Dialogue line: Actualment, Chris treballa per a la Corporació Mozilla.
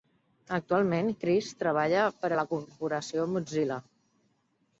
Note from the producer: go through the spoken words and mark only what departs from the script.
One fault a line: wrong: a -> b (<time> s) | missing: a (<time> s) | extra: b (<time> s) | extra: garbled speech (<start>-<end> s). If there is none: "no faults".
no faults